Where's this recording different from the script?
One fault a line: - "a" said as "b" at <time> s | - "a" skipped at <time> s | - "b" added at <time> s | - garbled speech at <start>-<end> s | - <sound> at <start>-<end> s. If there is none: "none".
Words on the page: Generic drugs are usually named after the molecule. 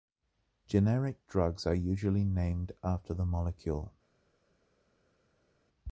none